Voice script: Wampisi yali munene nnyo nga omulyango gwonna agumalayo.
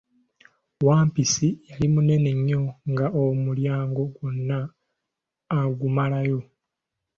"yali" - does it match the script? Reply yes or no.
yes